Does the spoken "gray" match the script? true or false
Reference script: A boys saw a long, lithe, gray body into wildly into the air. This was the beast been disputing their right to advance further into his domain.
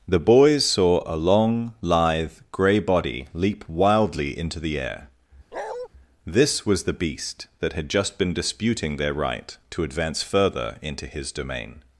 true